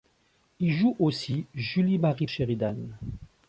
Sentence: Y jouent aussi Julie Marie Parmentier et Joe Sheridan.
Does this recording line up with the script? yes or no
no